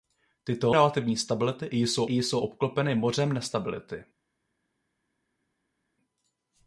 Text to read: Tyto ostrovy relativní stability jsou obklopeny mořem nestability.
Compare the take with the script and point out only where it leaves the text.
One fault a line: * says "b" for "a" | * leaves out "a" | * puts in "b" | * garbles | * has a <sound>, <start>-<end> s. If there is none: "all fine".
* leaves out "ostrovy"
* puts in "jsou"